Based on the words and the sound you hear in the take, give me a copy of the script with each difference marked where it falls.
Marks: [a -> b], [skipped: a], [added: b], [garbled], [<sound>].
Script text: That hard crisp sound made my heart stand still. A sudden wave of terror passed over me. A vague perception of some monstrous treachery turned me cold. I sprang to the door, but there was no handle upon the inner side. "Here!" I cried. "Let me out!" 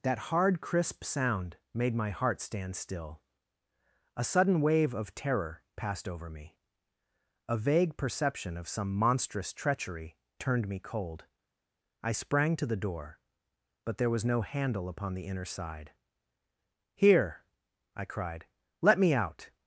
That hard crisp sound made my heart stand still. A sudden wave of terror passed over me. A vague perception of some monstrous treachery turned me cold. I sprang to the door, but there was no handle upon the inner side. "Here!" I cried. "Let me out!"